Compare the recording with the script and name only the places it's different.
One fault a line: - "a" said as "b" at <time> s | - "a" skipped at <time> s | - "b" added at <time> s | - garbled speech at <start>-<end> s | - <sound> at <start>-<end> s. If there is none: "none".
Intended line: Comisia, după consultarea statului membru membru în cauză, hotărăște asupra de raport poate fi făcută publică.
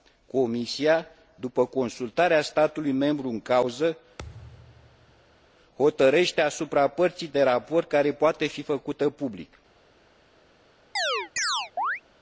- "membru" skipped at 3.3 s
- thud at 4.2-5.5 s
- "părții" added at 6.9 s
- "care" added at 7.9 s
- chirp at 11.0-12.0 s